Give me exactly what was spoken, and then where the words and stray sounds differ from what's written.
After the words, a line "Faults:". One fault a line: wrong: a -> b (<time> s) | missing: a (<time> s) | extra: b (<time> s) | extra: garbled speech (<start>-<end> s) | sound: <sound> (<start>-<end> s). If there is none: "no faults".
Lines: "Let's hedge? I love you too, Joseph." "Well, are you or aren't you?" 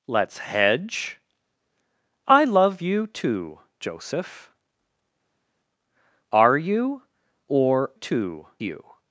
"Let's hedge? I love you too, Joseph." "Are you or too you?"
Faults:
missing: Well (4.5 s)
wrong: aren't -> too (7.9 s)